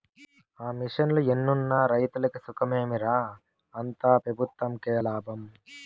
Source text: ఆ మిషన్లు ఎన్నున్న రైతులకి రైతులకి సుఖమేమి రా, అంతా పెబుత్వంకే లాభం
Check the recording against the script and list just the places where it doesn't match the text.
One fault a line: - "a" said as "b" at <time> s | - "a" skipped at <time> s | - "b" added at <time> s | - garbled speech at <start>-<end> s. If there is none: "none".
- "రైతులకి" skipped at 2.4 s